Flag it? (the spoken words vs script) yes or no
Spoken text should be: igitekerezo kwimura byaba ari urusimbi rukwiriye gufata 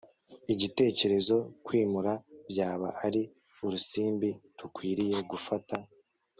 no